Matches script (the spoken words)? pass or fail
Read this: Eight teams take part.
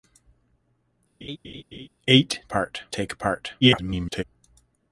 fail